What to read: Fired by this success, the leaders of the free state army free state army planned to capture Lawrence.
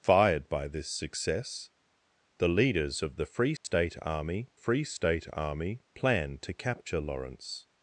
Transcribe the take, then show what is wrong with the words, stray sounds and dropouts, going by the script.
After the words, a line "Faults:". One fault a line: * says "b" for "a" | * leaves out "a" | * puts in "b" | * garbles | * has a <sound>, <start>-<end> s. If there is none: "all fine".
Fired by this success, the leaders of the free state army free state army planned to capture Lawrence.
Faults:
* has a dropout, 3.6-3.6 s